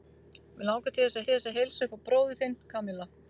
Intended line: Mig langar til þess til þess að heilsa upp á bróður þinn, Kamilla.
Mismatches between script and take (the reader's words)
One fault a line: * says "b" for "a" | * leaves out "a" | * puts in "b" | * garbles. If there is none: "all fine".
all fine